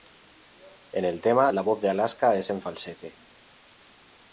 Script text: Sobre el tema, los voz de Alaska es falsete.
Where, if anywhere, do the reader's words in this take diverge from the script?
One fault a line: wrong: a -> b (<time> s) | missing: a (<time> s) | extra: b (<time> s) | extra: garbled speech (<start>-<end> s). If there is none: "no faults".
wrong: Sobre -> En (0.9 s)
wrong: los -> la (1.5 s)
extra: en (2.5 s)